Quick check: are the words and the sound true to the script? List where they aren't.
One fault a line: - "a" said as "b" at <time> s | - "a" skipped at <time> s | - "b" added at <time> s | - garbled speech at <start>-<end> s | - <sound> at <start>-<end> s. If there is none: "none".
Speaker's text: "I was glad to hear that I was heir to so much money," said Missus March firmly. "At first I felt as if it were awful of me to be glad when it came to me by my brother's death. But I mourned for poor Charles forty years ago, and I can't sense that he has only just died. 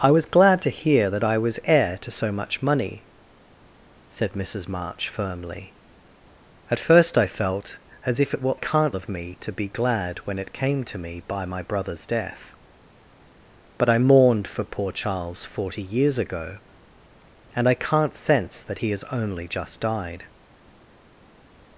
- "awful" said as "can't" at 8.5 s